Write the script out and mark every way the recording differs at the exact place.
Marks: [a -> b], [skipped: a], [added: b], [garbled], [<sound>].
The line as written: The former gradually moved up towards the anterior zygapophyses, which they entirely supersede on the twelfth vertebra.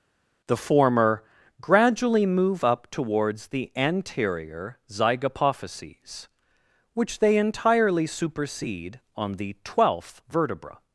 The former gradually [moved -> move] up towards the anterior zygapophyses, which they entirely supersede on the twelfth vertebra.